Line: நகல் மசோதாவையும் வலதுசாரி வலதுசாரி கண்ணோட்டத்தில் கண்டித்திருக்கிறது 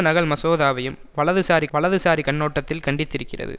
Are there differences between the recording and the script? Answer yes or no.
no